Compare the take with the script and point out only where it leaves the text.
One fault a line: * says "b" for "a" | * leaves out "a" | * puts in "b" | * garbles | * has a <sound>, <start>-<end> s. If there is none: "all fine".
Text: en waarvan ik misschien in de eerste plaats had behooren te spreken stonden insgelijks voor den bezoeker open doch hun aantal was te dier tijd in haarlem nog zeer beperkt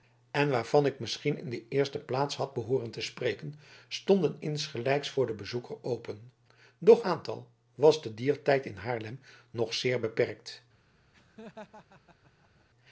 * leaves out "hun"
* has a laugh, 11.1-12.7 s